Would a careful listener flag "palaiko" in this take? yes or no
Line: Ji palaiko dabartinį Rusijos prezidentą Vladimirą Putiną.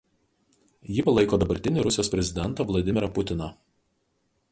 no